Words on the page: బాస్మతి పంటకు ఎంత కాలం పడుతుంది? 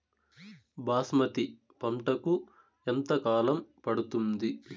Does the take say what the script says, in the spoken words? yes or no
yes